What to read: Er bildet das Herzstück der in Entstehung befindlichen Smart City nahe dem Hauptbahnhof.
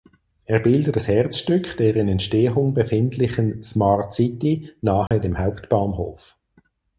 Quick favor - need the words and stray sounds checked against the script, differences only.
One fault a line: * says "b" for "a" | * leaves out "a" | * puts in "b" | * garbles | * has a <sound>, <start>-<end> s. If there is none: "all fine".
* has a dropout, 5.1-5.1 s